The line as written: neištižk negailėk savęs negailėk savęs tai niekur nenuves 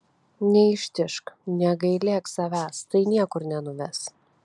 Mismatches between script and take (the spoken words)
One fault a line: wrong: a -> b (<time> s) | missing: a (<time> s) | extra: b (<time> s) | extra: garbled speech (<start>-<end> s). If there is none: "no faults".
missing: negailėk savęs (2.8 s)